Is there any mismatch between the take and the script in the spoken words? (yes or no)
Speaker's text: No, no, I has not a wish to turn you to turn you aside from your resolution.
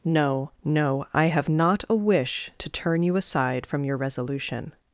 yes